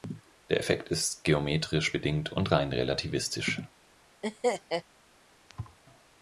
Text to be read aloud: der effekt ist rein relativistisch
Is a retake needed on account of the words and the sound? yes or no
yes